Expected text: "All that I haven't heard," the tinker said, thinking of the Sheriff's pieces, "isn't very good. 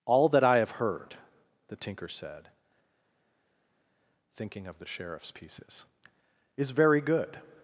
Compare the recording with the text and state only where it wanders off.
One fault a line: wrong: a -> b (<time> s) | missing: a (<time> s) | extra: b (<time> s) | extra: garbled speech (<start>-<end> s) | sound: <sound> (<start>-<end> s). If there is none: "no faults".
wrong: haven't -> have (0.6 s)
wrong: isn't -> is (6.6 s)